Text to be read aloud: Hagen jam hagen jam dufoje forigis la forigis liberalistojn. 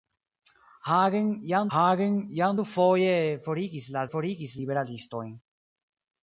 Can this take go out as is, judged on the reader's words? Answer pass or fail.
pass